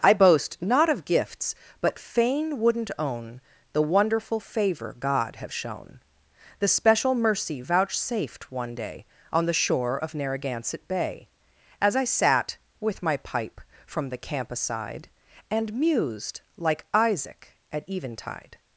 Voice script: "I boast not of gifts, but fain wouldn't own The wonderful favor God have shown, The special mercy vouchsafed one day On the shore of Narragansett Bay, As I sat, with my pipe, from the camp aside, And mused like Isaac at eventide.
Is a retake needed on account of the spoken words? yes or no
no